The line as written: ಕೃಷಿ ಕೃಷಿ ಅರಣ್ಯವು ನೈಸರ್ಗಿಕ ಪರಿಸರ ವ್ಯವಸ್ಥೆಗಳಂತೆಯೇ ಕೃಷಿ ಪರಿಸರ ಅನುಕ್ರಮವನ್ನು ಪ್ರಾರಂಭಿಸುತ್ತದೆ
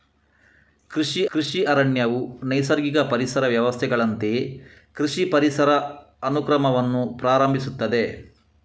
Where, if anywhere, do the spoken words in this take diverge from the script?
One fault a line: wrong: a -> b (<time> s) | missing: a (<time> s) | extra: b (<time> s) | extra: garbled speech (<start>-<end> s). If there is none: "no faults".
no faults